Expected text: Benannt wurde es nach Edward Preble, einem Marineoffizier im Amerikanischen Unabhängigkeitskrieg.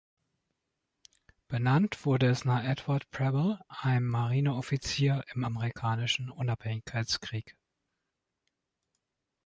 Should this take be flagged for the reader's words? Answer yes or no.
no